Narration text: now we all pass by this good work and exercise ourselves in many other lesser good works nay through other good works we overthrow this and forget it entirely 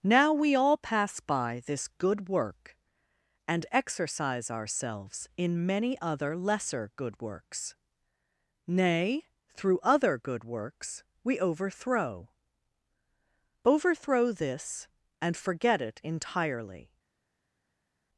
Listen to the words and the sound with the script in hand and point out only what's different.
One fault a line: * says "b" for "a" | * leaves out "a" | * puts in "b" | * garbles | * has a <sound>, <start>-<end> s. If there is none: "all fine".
* puts in "overthrow"